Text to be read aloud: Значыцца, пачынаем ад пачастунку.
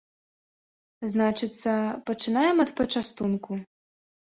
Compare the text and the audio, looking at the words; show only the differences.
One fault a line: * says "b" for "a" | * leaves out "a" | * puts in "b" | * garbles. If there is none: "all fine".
all fine